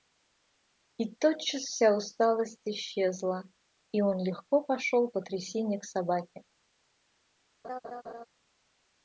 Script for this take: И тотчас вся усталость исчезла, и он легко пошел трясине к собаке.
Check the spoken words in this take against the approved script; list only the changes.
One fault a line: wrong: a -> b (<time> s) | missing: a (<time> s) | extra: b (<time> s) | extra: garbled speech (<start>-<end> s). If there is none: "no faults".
extra: по (5.1 s)